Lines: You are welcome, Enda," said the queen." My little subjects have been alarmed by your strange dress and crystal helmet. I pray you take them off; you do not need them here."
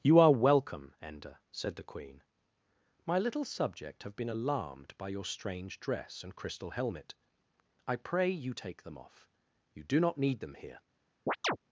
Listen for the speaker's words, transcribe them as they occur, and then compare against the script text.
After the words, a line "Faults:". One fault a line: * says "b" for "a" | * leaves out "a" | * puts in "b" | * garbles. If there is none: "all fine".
You are welcome, Enda," said the queen." My little subject have been alarmed by your strange dress and crystal helmet. I pray you take them off; you do not need them here."
Faults:
* says "subject" for "subjects"